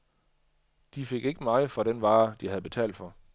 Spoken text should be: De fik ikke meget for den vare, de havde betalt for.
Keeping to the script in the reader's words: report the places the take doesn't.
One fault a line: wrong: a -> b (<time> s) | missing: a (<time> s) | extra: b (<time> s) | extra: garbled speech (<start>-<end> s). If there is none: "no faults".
no faults